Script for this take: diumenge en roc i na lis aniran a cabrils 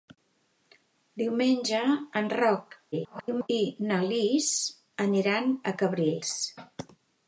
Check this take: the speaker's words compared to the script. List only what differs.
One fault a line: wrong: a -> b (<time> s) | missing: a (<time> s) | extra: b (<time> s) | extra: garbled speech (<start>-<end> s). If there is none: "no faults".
extra: garbled speech (2.9-3.5 s)